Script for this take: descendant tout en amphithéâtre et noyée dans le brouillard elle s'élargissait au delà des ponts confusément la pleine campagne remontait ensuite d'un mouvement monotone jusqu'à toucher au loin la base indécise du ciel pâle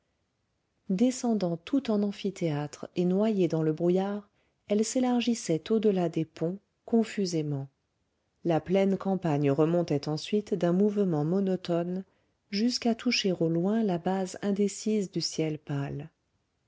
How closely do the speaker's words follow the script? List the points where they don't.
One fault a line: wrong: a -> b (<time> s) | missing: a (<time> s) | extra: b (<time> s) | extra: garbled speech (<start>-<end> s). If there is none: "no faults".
no faults